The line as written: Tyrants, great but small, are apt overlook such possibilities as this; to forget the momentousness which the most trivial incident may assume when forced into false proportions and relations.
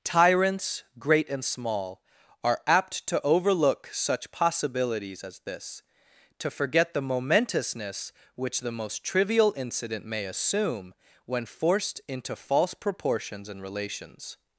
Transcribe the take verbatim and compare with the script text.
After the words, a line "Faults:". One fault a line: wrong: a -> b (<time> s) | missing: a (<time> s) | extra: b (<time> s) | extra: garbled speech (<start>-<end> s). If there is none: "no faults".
Tyrants, great and small, are apt to overlook such possibilities as this; to forget the momentousness which the most trivial incident may assume when forced into false proportions and relations.
Faults:
wrong: but -> and (1.3 s)
extra: to (3.1 s)